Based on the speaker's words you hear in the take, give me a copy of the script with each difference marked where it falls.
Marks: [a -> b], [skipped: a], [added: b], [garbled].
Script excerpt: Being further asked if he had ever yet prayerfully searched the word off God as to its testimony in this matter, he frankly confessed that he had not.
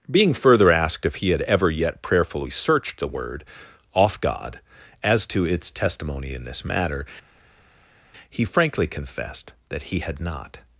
Being further asked if he had ever yet prayerfully searched the word off God as to its testimony in this matter, he frankly confessed that he had not.